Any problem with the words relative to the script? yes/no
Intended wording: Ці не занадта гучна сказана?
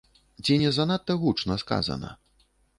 no